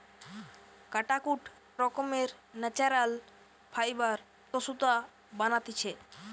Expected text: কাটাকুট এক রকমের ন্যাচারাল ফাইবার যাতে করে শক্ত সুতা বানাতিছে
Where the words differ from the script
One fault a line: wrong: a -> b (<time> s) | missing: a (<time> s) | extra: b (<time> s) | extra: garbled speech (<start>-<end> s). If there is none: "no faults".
missing: এক (1.4 s)
missing: যাতে করে শক্ত (4.2 s)